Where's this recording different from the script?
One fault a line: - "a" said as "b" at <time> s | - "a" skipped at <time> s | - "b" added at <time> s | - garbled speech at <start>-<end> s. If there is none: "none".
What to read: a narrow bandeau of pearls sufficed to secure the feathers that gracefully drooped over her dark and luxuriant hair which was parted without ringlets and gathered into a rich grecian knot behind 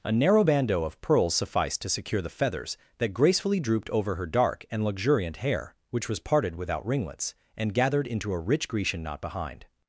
none